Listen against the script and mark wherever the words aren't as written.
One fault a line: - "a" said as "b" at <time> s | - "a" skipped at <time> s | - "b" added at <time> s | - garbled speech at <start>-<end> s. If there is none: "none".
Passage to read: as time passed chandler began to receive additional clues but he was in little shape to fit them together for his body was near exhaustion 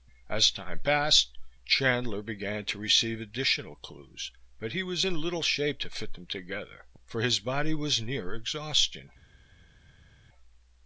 none